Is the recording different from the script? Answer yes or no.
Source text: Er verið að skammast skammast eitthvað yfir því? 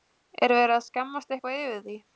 yes